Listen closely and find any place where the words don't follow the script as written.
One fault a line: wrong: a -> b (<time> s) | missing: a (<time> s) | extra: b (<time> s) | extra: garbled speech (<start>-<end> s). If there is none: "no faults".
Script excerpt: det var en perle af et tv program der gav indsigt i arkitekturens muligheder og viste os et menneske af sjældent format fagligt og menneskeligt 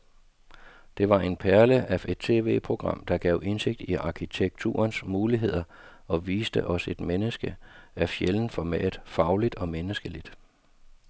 no faults